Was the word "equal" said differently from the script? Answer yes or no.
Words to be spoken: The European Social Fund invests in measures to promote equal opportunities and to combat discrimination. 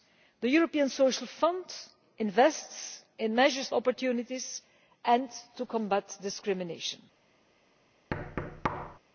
yes